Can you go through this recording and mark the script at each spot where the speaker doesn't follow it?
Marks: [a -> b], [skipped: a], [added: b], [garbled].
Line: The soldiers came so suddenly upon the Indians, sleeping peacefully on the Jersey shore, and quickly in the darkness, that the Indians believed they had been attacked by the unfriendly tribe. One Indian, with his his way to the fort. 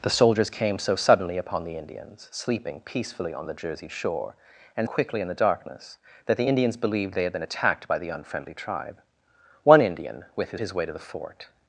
The soldiers came so suddenly upon the Indians, sleeping peacefully on the Jersey shore, and quickly in the darkness, that the Indians believed they had been attacked by the unfriendly tribe. One Indian, with his his way to the fort.